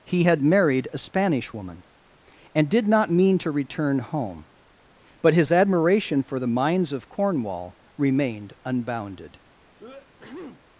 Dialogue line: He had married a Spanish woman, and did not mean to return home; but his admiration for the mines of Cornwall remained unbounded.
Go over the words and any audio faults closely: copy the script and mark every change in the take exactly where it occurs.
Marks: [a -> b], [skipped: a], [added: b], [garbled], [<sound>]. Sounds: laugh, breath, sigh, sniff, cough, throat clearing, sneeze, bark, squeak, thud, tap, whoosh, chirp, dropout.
He had married a Spanish woman, and did not mean to return home; but his admiration for the mines of Cornwall remained unbounded. [sneeze]